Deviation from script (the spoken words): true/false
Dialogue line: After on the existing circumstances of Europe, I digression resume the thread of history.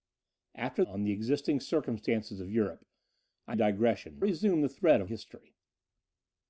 false